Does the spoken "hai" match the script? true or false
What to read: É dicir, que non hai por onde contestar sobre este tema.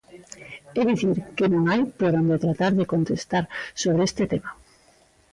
true